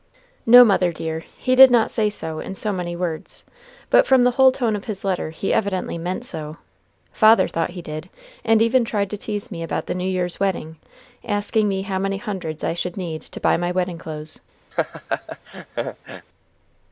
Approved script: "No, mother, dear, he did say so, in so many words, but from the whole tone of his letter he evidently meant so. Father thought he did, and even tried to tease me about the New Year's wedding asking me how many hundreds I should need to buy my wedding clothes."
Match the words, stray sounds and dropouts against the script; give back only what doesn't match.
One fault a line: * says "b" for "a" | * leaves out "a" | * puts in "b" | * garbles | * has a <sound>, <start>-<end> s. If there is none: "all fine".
* puts in "not"
* has a laugh, 14.7-16.3 s